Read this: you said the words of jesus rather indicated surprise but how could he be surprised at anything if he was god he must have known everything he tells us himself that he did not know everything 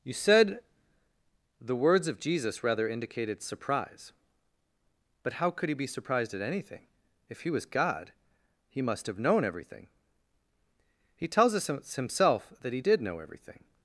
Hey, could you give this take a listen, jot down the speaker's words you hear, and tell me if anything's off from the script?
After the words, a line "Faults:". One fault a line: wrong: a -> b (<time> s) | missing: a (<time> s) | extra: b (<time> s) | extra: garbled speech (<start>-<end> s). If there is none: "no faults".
you said the words of jesus rather indicated surprise but how could he be surprised at anything if he was god he must have known everything he tells us himself that he did know everything
Faults:
missing: not (13.0 s)